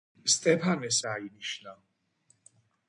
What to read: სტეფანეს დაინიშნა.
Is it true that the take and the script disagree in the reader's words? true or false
false